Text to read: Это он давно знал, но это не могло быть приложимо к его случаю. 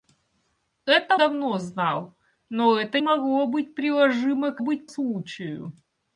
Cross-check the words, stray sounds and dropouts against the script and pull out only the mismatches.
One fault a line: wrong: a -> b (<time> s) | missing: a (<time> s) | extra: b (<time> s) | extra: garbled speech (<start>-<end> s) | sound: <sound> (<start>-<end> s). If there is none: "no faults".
missing: он (1.2 s)
missing: не (3.0 s)
wrong: его -> быть (4.6 s)